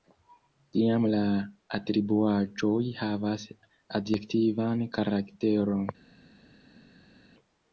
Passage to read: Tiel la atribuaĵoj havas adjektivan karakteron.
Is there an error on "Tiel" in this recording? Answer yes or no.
yes